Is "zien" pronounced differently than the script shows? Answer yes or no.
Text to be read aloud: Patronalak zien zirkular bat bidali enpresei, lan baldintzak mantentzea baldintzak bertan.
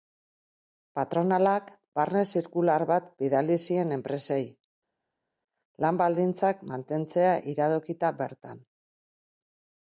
yes